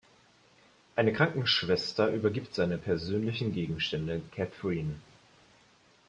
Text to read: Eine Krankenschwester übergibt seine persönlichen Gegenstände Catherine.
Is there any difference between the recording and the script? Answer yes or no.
no